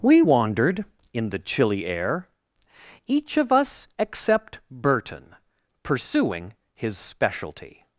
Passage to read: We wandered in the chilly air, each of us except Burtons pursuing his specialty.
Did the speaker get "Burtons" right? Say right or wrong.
wrong